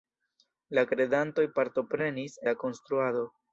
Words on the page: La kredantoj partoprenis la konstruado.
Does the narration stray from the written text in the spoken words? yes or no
no